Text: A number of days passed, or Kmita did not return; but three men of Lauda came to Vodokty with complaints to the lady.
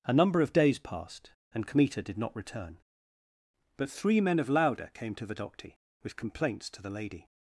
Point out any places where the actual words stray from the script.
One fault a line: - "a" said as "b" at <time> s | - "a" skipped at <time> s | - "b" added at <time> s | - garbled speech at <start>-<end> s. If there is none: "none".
- "or" said as "and" at 1.5 s